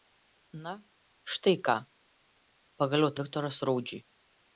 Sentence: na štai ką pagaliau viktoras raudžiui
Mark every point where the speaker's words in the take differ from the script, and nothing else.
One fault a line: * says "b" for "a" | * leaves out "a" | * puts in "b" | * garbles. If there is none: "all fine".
all fine